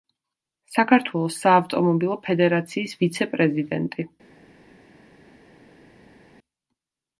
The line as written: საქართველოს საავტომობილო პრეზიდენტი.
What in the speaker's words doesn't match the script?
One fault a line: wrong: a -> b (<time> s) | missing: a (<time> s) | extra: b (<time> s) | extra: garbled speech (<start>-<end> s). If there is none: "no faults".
extra: ფედერაციის ვიცე (2.3 s)